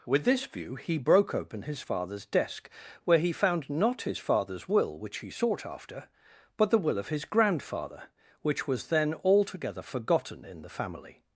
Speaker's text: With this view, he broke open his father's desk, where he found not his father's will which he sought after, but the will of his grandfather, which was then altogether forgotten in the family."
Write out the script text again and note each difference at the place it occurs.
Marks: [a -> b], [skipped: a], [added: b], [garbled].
With this view, he broke open his father's desk, where he found not his father's will which he sought after, but the will of his grandfather, which was then altogether forgotten in the family."